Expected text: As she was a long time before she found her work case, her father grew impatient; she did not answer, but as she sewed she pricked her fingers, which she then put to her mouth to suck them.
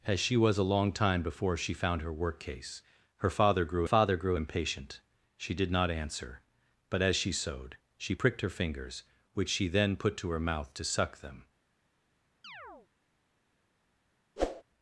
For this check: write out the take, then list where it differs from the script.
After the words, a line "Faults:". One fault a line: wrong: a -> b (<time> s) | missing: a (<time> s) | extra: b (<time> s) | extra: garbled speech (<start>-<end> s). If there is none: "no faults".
As she was a long time before she found her work case, her father grew father grew impatient; she did not answer, but as she sewed she pricked her fingers, which she then put to her mouth to suck them.
Faults:
extra: father grew (3.8 s)